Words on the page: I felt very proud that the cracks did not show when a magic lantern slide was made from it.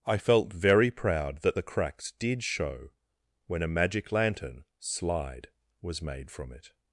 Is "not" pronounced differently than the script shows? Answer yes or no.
yes